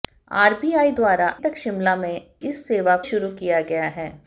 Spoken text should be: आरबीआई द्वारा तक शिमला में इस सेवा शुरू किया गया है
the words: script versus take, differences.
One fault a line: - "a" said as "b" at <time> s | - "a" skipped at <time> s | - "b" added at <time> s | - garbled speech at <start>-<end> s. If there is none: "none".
none